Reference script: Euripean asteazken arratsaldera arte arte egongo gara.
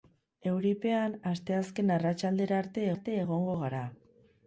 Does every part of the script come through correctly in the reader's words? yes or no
yes